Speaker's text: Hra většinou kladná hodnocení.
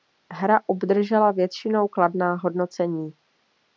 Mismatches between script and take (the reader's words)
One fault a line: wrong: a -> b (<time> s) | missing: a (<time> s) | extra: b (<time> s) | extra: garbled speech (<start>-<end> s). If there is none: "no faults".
extra: obdržela (0.7 s)